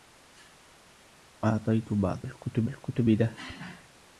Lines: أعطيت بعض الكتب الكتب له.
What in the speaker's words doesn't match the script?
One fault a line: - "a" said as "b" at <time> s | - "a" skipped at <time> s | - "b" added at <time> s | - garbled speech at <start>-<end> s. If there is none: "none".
none